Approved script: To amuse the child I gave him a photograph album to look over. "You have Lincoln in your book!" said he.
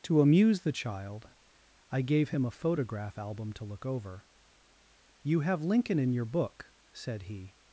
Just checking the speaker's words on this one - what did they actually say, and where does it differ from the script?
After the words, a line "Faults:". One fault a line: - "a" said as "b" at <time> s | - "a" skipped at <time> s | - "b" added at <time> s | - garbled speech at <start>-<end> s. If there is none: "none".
To amuse the child I gave him a photograph album to look over. "You have Lincoln in your book!" said he.
Faults:
none